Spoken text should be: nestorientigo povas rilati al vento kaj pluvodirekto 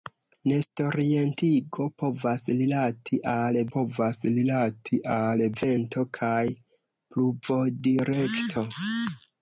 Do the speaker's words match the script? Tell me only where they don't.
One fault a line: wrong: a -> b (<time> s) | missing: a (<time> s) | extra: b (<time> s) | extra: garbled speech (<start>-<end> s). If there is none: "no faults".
extra: povas rilati al (3.8 s)